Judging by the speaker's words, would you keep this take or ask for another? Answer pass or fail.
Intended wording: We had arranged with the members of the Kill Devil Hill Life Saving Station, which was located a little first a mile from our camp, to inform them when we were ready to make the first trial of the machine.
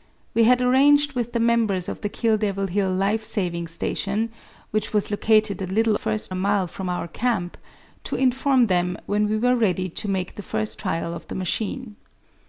pass